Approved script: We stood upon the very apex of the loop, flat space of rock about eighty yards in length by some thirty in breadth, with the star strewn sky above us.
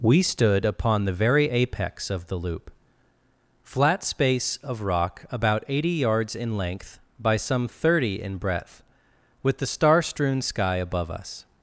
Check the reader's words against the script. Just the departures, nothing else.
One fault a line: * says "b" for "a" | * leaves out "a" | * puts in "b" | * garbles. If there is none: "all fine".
all fine